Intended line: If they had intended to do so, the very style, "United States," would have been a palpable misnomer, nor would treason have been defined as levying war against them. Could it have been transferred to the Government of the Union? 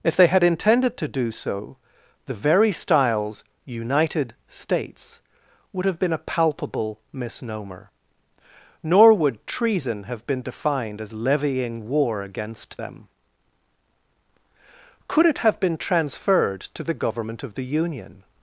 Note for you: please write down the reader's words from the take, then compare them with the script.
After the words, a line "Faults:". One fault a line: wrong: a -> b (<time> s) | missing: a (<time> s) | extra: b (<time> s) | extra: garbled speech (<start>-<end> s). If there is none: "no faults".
If they had intended to do so, the very styles, "United States," would have been a palpable misnomer, nor would treason have been defined as levying war against them. Could it have been transferred to the Government of the Union?
Faults:
wrong: style -> styles (2.7 s)